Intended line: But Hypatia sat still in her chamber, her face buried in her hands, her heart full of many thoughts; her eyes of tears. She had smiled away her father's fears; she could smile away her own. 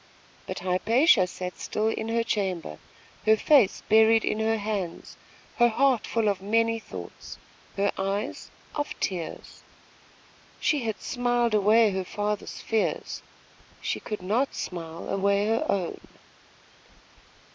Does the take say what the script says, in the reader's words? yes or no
no